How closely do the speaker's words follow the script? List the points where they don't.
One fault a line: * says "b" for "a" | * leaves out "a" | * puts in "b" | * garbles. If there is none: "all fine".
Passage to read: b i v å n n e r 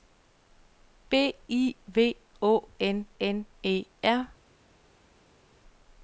all fine